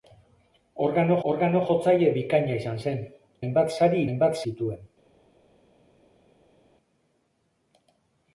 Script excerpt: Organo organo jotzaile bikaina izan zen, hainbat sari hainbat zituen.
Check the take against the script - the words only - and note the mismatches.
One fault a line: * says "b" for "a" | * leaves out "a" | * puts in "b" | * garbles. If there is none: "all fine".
all fine